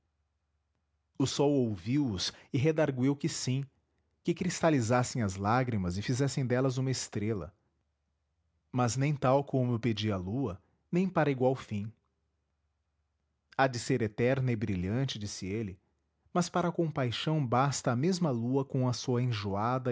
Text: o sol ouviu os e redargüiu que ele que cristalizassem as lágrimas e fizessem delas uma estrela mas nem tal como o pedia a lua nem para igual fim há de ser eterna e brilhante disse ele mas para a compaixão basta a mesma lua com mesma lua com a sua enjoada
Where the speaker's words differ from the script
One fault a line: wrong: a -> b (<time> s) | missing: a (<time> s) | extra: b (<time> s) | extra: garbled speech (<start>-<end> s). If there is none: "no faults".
wrong: ele -> sim (3.3 s)
missing: mesma lua com (18.9 s)